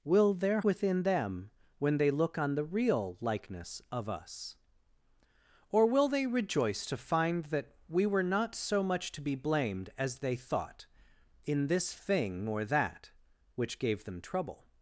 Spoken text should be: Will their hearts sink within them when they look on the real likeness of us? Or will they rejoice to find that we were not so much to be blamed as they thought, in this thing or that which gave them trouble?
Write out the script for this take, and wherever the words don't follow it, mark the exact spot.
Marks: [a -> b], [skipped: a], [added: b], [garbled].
Will their [skipped: hearts sink] within them when they look on the real likeness of us? Or will they rejoice to find that we were not so much to be blamed as they thought, in this thing or that which gave them trouble?